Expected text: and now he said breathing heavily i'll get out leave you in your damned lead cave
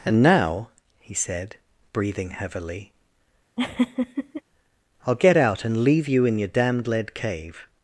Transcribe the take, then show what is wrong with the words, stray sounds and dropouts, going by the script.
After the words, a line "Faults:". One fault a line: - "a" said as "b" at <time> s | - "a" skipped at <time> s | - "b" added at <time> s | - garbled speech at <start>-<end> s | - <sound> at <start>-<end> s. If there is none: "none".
and now he said breathing heavily i'll get out and leave you in your damned lead cave
Faults:
- laugh at 3.6-4.4 s
- "and" added at 5.6 s